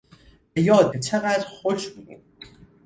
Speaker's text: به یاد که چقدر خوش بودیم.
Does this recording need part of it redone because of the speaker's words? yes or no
no